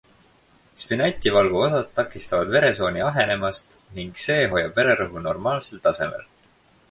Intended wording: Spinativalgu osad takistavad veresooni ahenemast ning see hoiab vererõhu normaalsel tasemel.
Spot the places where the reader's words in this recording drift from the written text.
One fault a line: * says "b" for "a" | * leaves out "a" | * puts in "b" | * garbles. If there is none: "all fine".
all fine